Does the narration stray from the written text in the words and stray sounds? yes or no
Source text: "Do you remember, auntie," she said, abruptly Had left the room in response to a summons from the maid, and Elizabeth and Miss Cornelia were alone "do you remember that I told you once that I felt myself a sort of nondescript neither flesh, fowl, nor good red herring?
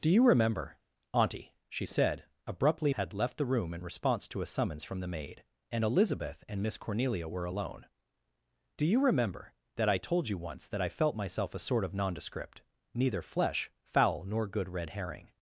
no